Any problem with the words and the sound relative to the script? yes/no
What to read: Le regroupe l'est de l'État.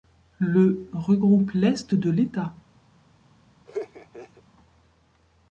yes